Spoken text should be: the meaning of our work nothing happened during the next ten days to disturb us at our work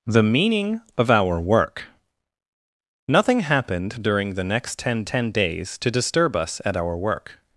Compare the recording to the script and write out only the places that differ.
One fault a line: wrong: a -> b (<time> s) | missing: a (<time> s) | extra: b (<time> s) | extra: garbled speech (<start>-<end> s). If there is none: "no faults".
extra: ten (5.1 s)